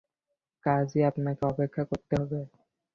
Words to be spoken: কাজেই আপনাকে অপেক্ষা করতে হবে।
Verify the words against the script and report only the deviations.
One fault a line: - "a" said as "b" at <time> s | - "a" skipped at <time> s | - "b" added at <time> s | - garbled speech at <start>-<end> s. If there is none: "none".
none